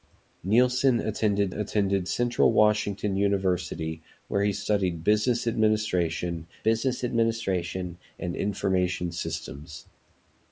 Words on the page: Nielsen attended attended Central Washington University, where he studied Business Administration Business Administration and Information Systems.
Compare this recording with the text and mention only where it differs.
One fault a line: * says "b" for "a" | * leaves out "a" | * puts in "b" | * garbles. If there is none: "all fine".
all fine